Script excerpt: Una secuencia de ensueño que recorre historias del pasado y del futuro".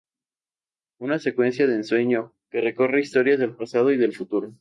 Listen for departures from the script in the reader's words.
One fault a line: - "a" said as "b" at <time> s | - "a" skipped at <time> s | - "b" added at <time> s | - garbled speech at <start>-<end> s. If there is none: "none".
none